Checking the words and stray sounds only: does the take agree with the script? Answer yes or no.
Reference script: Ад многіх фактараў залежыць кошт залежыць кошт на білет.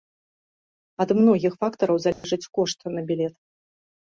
no